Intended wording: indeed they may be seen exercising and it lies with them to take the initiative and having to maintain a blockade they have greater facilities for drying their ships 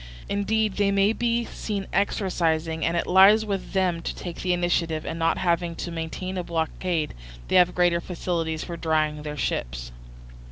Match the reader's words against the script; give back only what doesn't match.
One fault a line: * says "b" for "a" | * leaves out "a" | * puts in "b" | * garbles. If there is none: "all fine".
* puts in "not"